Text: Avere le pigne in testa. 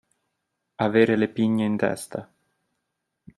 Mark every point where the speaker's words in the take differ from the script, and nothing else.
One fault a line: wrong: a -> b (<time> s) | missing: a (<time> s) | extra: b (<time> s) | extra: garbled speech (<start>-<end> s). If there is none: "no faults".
no faults